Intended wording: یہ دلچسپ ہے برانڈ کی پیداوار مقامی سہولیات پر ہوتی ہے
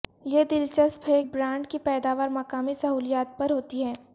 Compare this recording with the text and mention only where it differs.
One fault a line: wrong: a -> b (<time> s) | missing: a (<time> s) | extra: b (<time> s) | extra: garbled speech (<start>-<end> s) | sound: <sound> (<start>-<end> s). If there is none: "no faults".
no faults